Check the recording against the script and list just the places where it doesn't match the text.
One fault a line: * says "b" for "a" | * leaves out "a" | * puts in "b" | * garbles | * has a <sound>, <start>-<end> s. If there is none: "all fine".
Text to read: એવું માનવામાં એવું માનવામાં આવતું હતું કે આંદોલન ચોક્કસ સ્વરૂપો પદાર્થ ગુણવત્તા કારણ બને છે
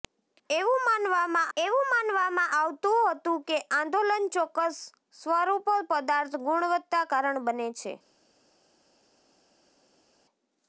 all fine